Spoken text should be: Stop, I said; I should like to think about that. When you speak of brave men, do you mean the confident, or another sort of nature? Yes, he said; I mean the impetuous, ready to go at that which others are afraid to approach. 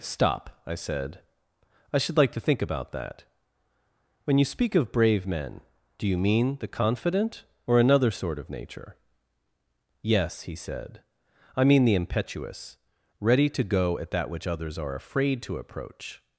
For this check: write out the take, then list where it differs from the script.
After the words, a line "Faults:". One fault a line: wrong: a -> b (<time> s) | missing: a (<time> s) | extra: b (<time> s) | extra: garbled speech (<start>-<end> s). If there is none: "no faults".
Stop, I said; I should like to think about that. When you speak of brave men, do you mean the confident, or another sort of nature? Yes, he said; I mean the impetuous, ready to go at that which others are afraid to approach.
Faults:
no faults